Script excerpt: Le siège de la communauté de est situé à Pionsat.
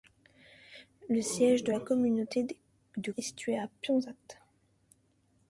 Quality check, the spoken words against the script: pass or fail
pass